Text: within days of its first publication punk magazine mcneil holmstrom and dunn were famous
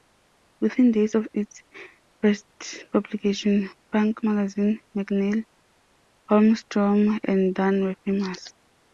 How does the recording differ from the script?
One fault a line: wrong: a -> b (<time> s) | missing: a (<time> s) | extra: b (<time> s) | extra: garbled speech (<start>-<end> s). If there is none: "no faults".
no faults